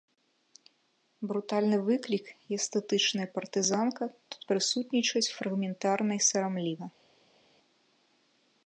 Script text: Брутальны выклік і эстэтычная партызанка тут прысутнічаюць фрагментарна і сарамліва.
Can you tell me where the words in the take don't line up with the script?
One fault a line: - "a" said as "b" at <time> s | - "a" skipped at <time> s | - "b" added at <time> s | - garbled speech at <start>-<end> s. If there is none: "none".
none